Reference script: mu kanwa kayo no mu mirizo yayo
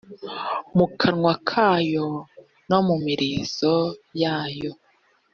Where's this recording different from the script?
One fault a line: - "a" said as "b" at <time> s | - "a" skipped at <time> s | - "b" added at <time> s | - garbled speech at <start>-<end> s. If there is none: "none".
none